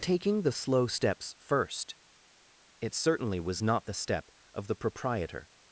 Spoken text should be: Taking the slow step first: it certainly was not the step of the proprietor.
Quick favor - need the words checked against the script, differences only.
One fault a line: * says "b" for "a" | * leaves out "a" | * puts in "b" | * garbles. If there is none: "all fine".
* says "steps" for "step"